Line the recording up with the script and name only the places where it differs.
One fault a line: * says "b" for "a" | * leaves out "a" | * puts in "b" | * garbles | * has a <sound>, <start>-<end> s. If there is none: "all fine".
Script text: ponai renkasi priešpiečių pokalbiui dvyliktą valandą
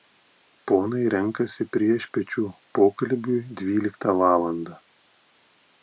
all fine